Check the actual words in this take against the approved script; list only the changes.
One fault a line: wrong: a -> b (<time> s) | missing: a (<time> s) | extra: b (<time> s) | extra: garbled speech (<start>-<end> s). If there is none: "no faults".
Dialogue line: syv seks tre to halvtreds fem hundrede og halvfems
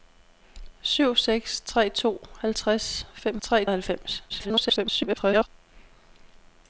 wrong: hundrede -> tre (3.4 s)
extra: garbled speech (4.3-5.5 s)